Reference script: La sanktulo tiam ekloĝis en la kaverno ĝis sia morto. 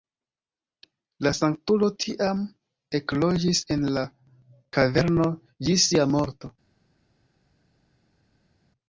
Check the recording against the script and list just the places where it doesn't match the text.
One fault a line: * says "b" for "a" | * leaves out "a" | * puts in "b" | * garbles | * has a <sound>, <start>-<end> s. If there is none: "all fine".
all fine